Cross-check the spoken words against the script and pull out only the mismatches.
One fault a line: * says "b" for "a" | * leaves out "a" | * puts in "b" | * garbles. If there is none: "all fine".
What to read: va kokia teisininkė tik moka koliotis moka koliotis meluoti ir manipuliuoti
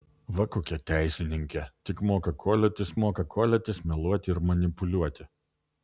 all fine